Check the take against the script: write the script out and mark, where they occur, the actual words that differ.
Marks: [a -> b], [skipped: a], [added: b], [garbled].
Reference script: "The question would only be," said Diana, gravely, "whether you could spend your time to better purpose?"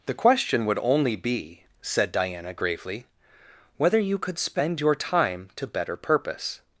"The question would only be," said Diana, gravely, "whether you could spend your time to better purpose?"